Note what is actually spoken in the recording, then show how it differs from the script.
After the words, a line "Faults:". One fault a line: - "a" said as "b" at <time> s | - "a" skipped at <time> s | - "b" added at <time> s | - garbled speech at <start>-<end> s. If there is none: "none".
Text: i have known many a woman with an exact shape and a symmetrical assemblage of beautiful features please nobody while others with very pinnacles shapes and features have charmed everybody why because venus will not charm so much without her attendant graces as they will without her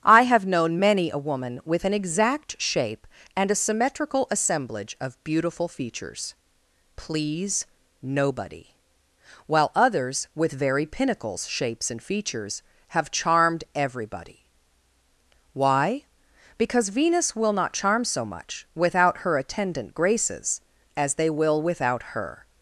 i have known many a woman with an exact shape and a symmetrical assemblage of beautiful features please nobody while others with very pinnacles shapes and features have charmed everybody why because venus will not charm so much without her attendant graces as they will without her
Faults:
none